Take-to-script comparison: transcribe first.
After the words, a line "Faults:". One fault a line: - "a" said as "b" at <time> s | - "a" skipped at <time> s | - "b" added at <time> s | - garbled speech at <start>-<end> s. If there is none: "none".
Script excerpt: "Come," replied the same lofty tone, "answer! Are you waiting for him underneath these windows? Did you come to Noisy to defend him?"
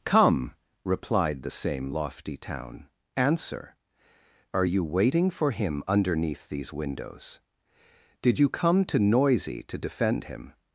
"Come," replied the same lofty town, "answer! Are you waiting for him underneath these windows? Did you come to Noisy to defend him?"
Faults:
- "tone" said as "town" at 2.4 s